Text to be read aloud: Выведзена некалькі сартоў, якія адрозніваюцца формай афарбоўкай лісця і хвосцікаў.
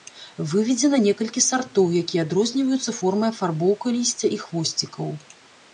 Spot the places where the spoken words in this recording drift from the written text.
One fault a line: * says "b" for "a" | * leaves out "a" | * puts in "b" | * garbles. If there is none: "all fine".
all fine